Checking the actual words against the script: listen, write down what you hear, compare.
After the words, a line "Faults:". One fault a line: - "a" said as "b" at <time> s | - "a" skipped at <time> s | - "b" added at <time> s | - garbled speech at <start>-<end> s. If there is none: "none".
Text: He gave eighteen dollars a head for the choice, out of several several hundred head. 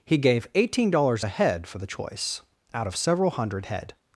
He gave eighteen dollars a head for the choice, out of several hundred head.
Faults:
- "several" skipped at 3.3 s